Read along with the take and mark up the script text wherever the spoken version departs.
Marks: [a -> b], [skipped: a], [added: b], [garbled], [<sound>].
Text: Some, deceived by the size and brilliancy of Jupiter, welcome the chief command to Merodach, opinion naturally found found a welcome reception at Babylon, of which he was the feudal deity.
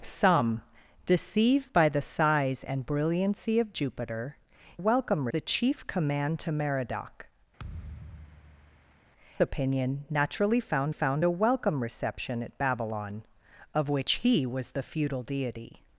Some, deceived by the size and brilliancy of Jupiter, welcome the chief command to Merodach, [thud] opinion naturally found found a welcome reception at Babylon, of which he was the feudal deity.